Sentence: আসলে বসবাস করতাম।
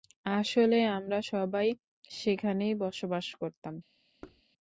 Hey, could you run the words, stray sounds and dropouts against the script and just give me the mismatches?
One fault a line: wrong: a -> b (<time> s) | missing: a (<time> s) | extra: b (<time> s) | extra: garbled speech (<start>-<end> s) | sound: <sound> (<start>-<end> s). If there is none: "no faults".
extra: আমরা সবাই সেখানেই (0.9 s)
sound: thud (4.2-4.4 s)